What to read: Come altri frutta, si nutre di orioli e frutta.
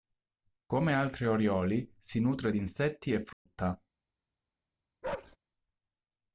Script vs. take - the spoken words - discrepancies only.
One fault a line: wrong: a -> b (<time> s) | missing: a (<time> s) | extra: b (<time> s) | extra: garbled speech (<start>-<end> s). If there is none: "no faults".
wrong: frutta -> orioli (1.3 s)
wrong: orioli -> insetti (2.6 s)